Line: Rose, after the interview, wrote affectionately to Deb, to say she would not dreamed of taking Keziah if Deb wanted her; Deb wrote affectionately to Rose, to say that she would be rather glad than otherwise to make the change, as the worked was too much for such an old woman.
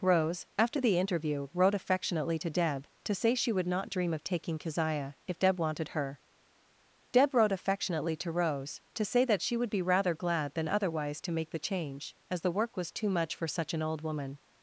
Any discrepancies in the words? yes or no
yes